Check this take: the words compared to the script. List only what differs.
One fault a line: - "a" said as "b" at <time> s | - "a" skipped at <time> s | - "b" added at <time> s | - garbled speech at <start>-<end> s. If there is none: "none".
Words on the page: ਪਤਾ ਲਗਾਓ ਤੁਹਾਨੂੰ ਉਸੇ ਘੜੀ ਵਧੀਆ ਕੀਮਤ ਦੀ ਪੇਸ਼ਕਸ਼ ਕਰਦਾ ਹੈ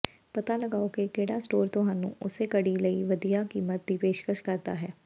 - "ਕਿ ਕਿਹੜਾ ਸਟੋਰ" added at 0.9 s
- "ਲਈ" added at 2.8 s